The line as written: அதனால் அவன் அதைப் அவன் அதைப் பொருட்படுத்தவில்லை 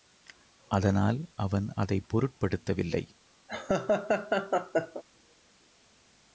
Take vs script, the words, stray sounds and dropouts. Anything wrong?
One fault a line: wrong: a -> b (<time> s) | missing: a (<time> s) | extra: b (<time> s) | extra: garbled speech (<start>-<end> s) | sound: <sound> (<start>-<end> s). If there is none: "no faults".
missing: அவன் அதைப் (2.0 s)
sound: laugh (3.5-5.0 s)